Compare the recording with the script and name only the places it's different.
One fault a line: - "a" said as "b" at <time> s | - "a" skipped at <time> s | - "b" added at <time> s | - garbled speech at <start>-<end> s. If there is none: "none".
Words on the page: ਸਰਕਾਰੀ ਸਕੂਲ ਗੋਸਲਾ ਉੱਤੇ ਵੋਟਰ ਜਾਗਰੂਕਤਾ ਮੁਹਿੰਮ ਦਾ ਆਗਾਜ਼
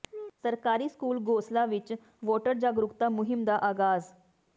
- "ਉੱਤੇ" said as "ਵਿੱਚ" at 1.6 s